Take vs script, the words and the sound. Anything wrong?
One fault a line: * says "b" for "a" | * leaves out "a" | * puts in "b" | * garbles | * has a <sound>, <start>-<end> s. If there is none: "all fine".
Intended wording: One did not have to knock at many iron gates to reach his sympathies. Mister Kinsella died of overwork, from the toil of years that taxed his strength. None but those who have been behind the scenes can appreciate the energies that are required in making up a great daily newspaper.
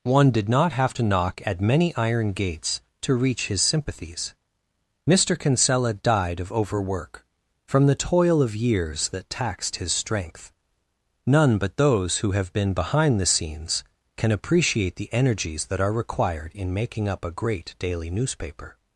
all fine